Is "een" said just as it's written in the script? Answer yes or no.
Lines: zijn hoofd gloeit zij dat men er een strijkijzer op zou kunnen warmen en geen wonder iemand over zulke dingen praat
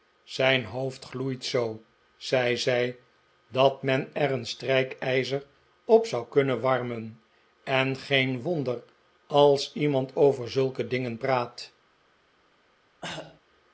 yes